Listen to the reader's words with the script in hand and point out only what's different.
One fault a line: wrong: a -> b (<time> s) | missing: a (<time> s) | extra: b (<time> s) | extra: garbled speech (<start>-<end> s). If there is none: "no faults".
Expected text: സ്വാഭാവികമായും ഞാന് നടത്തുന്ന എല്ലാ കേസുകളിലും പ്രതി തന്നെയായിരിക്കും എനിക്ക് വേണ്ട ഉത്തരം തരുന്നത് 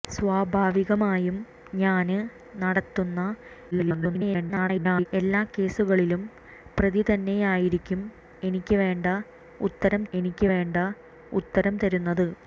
extra: garbled speech (3.7-5.1 s)
extra: എനിക്ക് വേണ്ട ഉത്തരം (10.1 s)